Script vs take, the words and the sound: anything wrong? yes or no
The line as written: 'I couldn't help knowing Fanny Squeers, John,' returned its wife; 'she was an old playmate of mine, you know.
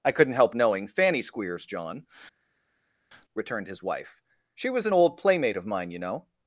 yes